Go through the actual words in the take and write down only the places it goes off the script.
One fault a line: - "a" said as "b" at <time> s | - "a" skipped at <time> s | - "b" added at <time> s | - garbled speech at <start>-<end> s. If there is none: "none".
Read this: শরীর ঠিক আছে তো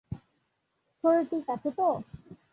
none